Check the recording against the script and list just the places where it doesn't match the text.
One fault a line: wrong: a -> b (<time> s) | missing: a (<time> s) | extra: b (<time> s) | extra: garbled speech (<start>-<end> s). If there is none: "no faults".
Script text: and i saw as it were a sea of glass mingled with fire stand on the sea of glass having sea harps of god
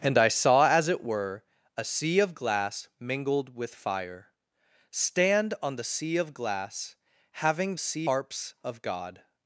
no faults